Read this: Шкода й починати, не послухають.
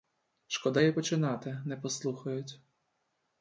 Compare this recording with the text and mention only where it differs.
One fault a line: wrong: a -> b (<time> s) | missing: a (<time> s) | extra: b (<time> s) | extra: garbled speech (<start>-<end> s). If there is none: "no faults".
no faults